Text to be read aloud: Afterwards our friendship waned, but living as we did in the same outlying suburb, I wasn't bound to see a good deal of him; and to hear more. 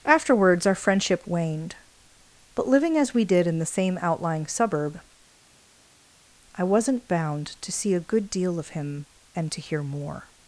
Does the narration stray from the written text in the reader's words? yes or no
no